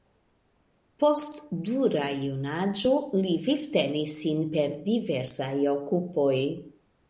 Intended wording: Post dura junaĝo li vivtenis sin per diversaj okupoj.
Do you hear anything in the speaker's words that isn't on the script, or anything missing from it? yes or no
no